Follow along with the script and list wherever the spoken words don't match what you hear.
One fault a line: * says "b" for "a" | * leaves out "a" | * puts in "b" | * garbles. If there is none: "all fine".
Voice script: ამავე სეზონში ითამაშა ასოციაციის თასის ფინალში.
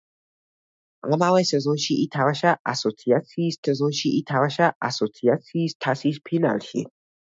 * puts in "სეზონში ითამაშა ასოციაციის"